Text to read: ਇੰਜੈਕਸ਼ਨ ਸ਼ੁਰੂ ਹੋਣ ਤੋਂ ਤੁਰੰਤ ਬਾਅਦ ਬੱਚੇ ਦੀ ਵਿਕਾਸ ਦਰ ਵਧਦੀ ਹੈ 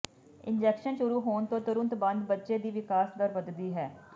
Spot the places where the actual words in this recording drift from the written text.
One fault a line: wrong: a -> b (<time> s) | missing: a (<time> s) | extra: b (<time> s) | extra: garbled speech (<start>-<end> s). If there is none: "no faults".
no faults